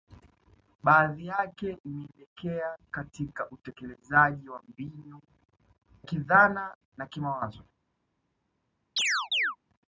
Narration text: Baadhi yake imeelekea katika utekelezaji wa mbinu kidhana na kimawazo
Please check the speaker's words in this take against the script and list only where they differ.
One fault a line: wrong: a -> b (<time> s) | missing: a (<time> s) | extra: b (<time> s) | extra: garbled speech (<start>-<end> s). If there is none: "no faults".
no faults